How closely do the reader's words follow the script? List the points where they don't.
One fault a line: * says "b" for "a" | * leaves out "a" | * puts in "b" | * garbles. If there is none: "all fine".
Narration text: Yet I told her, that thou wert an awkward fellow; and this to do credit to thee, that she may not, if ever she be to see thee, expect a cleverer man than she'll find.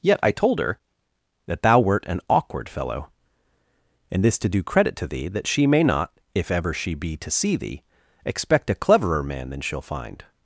all fine